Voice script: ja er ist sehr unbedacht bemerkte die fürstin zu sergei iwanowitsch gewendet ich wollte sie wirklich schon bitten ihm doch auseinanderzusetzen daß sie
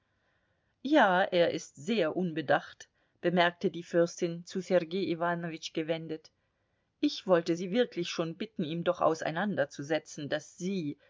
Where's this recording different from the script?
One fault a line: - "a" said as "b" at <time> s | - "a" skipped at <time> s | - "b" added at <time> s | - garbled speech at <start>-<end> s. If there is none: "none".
none